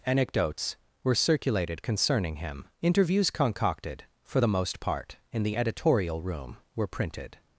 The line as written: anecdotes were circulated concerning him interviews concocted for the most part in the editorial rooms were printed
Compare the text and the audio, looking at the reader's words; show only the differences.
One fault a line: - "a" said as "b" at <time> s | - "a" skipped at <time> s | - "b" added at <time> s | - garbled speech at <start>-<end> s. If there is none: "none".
- "rooms" said as "room" at 6.2 s